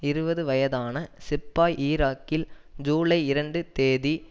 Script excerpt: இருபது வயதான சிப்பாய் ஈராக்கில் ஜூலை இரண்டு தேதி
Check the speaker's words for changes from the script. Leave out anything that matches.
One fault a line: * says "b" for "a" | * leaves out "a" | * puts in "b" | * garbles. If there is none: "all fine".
all fine